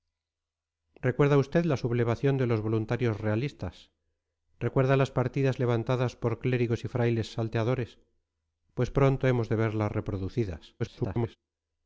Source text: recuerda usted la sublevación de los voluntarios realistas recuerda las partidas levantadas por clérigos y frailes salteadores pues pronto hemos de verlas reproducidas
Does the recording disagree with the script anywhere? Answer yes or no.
yes